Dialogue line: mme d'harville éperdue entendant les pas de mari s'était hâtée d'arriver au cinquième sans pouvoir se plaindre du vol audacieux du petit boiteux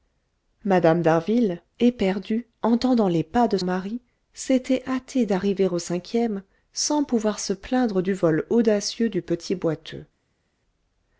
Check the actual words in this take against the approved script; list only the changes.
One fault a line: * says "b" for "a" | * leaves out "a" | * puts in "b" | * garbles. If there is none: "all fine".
all fine